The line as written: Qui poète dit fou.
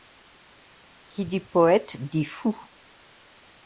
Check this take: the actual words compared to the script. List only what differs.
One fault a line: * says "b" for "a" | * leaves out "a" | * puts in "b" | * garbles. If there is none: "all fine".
* puts in "dit"